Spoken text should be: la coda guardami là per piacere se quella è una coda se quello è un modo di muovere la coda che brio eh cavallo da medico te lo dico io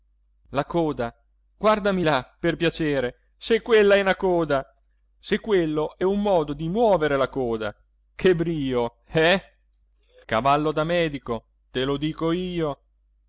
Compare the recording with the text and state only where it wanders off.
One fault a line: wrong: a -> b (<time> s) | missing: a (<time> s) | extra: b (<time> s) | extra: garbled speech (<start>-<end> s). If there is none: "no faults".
no faults